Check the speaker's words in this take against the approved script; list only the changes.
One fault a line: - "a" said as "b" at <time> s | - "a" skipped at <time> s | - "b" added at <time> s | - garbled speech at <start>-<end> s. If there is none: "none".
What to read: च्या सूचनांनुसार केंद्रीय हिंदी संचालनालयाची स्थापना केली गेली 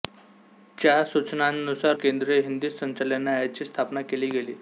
none